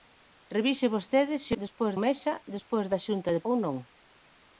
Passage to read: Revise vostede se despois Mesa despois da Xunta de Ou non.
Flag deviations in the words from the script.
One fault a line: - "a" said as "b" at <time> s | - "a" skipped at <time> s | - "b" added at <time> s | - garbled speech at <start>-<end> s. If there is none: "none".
none